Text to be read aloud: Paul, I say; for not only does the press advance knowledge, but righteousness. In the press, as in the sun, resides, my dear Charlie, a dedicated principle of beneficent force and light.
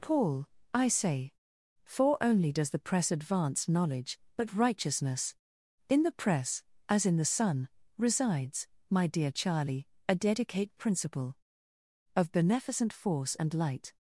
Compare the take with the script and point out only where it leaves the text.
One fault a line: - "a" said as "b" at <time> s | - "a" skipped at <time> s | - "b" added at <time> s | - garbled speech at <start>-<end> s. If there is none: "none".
- "not" skipped at 2.2 s
- "dedicated" said as "dedicate" at 10.2 s